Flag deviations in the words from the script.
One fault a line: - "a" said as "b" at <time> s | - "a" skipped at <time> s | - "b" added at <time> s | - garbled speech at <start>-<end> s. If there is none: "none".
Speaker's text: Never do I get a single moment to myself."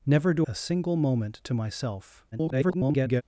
- "I get" skipped at 0.5 s
- garbled speech at 2.3-3.2 s